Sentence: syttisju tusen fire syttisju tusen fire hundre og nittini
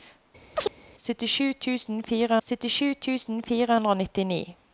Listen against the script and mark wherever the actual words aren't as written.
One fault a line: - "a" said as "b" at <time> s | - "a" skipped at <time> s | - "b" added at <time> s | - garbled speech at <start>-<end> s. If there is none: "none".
none